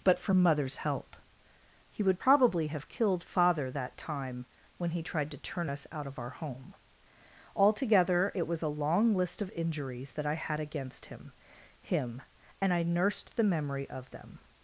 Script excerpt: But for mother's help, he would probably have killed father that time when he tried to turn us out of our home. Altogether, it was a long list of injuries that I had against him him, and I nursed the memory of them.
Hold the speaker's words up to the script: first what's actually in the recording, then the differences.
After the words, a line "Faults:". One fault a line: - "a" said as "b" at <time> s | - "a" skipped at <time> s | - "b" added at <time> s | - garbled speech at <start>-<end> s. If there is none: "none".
But for mother's help, he would probably have killed father that time when he tried to turn us out of our home. Altogether, it was a long list of injuries that I had against him him, and I nursed the memory of them.
Faults:
none